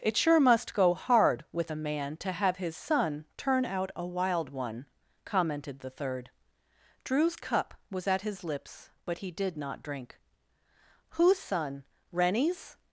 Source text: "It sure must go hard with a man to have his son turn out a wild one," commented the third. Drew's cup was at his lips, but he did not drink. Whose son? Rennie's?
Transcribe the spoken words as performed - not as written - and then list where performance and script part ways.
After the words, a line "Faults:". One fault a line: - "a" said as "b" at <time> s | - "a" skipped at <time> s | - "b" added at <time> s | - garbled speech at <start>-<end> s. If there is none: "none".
"It sure must go hard with a man to have his son turn out a wild one," commented the third. Drew's cup was at his lips, but he did not drink. Whose son? Rennie's?
Faults:
none